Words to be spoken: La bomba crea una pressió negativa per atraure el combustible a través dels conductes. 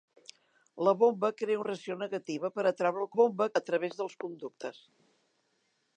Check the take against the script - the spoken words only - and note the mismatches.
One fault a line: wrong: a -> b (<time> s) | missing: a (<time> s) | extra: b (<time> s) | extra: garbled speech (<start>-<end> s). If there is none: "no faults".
missing: una (1.6 s)
wrong: combustible -> bomba (3.2 s)